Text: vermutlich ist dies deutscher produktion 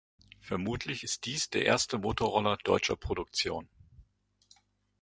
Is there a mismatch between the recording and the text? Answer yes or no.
yes